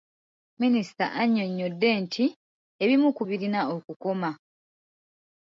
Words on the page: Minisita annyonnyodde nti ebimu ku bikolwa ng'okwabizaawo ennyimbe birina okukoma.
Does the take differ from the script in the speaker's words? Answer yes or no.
yes